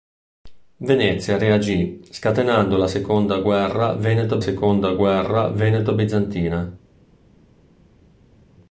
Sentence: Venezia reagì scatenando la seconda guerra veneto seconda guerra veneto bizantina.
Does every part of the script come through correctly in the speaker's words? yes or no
yes